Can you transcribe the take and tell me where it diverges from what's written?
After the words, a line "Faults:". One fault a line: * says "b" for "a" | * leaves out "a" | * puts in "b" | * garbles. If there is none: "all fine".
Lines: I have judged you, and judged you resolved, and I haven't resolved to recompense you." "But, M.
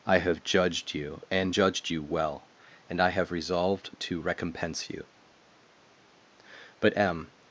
I have judged you, and judged you well, and I have resolved to recompense you." "But, M.
Faults:
* says "well" for "resolved"
* says "have" for "haven't"